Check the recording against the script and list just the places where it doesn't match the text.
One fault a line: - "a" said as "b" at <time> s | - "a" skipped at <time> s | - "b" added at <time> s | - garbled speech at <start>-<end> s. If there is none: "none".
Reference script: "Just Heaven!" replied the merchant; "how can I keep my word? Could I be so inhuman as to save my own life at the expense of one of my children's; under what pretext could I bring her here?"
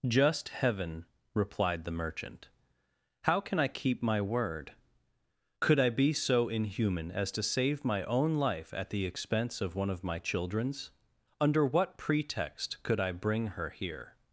none